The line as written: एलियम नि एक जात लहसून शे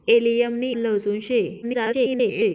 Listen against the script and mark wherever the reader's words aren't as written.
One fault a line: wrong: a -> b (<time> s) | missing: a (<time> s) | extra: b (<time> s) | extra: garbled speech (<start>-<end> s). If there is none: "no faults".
missing: एक जात (0.7 s)
extra: garbled speech (1.6-2.5 s)